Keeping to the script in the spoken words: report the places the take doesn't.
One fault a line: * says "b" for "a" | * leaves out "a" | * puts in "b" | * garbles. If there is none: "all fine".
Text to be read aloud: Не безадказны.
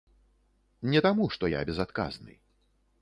* puts in "таму што я"